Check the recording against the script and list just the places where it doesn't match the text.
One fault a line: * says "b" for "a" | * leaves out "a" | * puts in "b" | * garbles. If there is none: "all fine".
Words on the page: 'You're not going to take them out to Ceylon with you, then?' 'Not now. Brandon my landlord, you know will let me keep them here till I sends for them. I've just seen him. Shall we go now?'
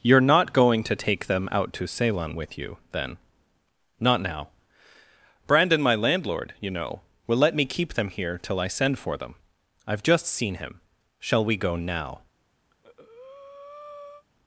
* says "send" for "sends"